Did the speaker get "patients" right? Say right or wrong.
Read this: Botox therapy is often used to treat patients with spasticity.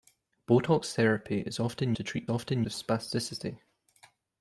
wrong